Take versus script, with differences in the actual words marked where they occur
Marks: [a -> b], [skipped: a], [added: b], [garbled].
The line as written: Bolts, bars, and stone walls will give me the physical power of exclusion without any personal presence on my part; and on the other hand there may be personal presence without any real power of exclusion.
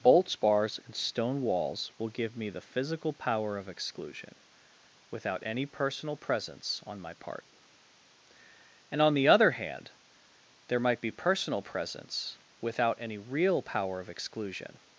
Bolts, bars, and stone walls will give me the physical power of exclusion without any personal presence on my part; and on the other hand there [may -> might] be personal presence without any real power of exclusion.